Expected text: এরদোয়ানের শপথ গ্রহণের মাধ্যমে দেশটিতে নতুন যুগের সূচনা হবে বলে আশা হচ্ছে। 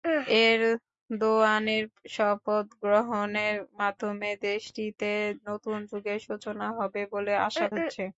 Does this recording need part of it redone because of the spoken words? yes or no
no